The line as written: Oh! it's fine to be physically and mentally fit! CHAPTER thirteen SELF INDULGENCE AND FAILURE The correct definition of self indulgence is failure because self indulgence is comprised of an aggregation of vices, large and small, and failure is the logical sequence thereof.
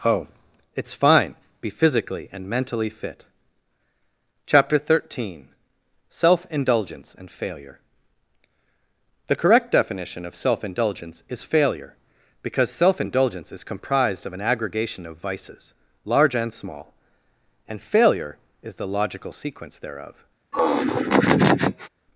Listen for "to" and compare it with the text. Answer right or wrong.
wrong